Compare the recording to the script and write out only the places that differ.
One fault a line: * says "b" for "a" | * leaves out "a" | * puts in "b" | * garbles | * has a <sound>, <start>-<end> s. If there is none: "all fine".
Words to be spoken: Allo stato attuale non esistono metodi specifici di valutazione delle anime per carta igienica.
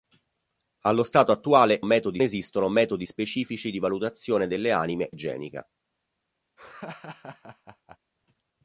* says "metodi" for "non"
* leaves out "per carta"
* has a laugh, 6.6-8.0 s